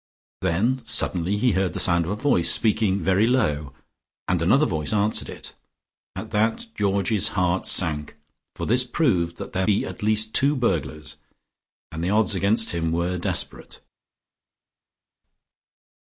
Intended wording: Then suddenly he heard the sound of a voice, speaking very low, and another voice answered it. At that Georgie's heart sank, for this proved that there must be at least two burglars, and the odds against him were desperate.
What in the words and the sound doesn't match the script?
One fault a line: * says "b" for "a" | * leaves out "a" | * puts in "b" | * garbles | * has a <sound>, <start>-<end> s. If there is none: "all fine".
* leaves out "must"